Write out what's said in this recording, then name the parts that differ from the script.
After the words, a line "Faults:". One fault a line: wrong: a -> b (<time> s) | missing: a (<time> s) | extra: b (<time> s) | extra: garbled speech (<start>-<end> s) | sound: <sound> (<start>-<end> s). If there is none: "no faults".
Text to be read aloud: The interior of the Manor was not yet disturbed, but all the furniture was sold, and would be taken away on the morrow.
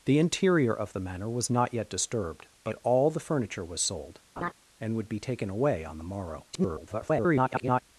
The interior of the Manor was not yet disturbed, but all the furniture was sold, and would be taken away on the morrow. [garbled]
Faults:
sound: laugh (4.4-4.5 s)
extra: garbled speech (6.5-7.8 s)